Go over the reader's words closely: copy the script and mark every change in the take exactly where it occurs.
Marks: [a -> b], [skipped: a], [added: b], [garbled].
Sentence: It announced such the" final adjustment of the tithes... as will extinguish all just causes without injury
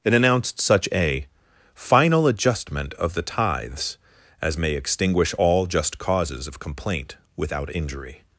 It announced such [the" -> a] final adjustment of the tithes... as [will -> may] extinguish all just causes [added: of complaint] without injury